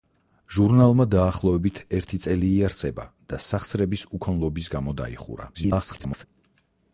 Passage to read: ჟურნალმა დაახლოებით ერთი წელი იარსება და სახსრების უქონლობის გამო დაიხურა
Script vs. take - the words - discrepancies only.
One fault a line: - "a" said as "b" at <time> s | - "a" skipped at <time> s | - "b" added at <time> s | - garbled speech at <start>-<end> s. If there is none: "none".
- garbled speech at 5.5-6.2 s